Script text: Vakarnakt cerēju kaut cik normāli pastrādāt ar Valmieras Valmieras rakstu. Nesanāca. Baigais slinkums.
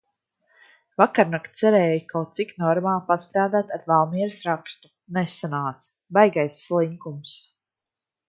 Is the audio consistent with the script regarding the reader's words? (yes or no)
no